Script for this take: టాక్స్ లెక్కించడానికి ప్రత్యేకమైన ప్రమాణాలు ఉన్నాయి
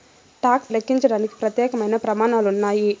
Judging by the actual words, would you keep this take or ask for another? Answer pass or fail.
pass